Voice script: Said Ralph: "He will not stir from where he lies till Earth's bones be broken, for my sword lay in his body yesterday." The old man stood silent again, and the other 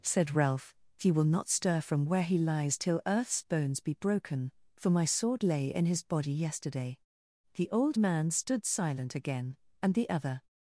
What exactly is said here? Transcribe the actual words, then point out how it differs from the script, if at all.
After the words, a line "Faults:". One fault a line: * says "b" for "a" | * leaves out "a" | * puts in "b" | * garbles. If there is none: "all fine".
Said Ralph: "He will not stir from where he lies till Earth's bones be broken, for my sword lay in his body yesterday." The old man stood silent again, and the other
Faults:
all fine